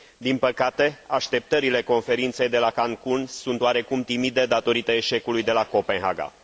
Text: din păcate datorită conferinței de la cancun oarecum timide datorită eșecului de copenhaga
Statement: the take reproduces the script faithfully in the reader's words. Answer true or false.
false